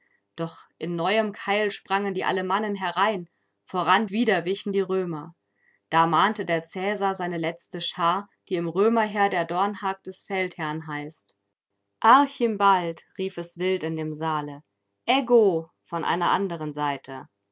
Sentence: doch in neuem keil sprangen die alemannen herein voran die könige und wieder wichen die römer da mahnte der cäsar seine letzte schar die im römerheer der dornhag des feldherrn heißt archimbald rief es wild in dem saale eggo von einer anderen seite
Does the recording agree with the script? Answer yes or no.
no